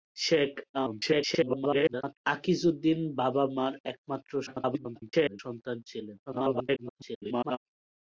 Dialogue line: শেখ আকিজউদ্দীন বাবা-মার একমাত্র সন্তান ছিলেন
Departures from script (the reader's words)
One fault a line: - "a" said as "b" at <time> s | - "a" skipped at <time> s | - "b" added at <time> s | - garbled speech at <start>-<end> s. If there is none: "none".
- garbled speech at 0.7-2.2 s
- garbled speech at 4.5-5.4 s
- garbled speech at 6.3-7.6 s